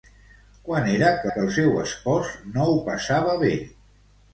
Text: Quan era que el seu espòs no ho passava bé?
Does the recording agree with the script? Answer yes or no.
no